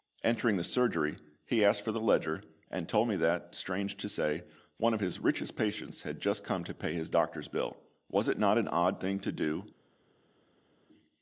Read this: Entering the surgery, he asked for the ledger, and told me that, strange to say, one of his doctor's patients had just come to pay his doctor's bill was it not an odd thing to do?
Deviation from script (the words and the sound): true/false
true